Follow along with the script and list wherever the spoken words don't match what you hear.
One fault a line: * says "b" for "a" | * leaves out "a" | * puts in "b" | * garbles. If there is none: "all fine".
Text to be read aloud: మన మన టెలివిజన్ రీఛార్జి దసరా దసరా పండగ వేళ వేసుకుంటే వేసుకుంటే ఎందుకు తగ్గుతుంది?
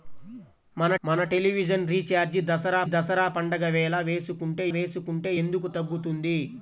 all fine